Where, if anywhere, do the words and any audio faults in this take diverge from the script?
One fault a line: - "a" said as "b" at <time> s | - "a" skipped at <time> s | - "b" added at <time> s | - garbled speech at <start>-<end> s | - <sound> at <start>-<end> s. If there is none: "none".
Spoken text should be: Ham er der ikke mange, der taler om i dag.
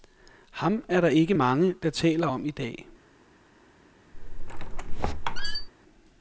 - squeak at 4.1-5.7 s